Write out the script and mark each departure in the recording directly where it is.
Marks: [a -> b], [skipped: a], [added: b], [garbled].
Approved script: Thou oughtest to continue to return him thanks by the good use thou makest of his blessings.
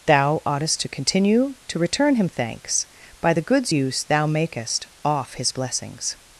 Thou oughtest to continue to return him thanks by the [good -> goods] use thou makest [of -> off] his blessings.